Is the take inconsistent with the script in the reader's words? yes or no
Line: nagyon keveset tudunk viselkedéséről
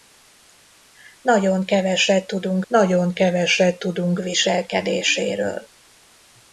yes